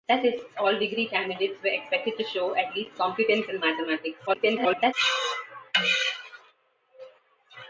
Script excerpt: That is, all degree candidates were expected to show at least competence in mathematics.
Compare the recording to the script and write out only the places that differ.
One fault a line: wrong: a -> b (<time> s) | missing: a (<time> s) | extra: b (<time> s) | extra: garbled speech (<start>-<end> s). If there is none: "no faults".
extra: garbled speech (4.3-4.9 s)